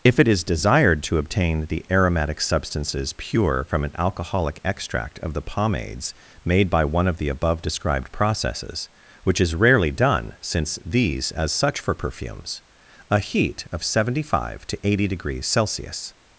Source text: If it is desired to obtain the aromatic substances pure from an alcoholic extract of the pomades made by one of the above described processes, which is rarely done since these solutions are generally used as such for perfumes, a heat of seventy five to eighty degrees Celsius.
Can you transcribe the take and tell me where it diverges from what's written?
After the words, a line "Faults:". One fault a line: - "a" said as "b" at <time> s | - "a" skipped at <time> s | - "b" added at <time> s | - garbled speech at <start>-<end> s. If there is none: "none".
If it is desired to obtain the aromatic substances pure from an alcoholic extract of the pomades made by one of the above described processes, which is rarely done since these as such for perfumes, a heat of seventy five to eighty degrees Celsius.
Faults:
- "solutions are generally used" skipped at 11.3 s